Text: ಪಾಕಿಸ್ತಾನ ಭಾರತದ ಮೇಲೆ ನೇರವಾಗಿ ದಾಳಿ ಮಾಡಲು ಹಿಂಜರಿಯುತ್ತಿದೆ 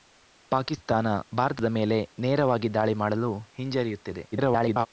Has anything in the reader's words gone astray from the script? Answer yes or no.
yes